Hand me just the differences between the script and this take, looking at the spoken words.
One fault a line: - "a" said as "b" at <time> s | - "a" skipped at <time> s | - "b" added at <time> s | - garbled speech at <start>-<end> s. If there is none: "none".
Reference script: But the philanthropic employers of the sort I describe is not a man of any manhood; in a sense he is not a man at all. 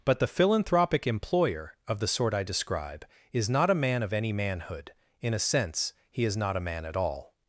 - "employers" said as "employer" at 1.1 s